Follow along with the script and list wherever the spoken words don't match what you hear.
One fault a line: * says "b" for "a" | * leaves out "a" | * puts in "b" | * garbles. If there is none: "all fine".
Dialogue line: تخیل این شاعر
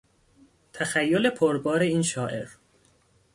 * puts in "پربار"